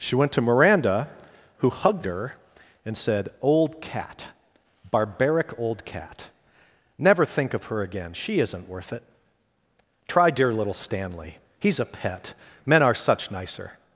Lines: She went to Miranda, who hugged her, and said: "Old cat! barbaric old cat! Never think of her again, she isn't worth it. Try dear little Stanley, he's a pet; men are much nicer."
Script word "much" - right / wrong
wrong